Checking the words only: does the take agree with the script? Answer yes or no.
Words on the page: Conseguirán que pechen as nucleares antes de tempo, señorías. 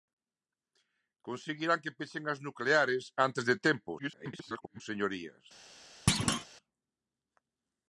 no